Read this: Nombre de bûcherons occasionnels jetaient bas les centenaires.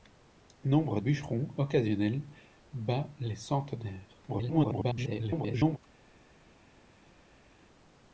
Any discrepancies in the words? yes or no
yes